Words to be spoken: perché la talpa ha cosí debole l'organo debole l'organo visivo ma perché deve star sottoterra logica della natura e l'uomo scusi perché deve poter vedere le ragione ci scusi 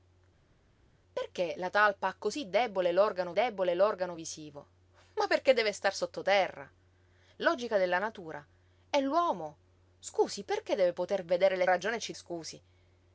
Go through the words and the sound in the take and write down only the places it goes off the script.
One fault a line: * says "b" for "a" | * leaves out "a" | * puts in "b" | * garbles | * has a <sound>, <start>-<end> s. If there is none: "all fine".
all fine